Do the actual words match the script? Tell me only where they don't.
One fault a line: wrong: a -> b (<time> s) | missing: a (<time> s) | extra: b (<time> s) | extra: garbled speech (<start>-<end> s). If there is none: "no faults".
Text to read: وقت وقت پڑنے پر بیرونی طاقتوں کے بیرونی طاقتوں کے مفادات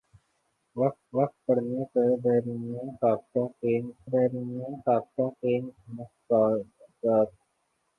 no faults